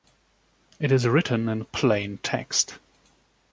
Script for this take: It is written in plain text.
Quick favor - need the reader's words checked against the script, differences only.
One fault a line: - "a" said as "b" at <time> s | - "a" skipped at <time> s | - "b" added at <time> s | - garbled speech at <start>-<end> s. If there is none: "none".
none